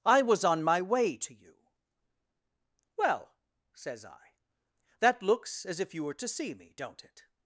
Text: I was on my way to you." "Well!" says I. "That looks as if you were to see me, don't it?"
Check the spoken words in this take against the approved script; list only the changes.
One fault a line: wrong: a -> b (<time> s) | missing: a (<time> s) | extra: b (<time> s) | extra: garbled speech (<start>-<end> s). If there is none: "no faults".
no faults